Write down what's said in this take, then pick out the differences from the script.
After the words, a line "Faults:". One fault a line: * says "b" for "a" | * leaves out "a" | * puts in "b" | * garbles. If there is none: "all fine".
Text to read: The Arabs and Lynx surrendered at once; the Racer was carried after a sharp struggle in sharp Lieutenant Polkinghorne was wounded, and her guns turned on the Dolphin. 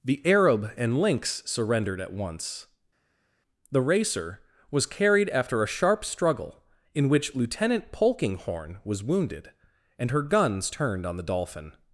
The Arab and Lynx surrendered at once; the Racer was carried after a sharp struggle in which Lieutenant Polkinghorne was wounded, and her guns turned on the Dolphin.
Faults:
* says "Arab" for "Arabs"
* says "which" for "sharp"